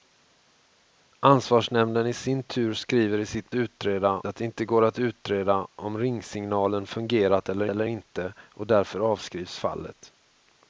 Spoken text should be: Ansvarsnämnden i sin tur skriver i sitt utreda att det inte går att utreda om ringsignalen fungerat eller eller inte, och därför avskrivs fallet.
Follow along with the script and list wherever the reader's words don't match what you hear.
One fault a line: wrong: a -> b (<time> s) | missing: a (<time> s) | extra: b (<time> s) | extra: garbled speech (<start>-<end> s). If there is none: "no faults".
no faults